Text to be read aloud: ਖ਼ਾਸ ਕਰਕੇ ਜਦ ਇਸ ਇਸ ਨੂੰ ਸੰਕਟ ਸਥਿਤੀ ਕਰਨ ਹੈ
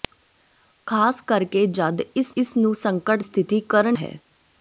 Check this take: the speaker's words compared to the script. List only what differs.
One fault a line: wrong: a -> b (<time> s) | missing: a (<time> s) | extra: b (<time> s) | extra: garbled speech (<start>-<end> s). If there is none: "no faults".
no faults